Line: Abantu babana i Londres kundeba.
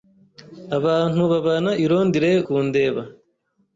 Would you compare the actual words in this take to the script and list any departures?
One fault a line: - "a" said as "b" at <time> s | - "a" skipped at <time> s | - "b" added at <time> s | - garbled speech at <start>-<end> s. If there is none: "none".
none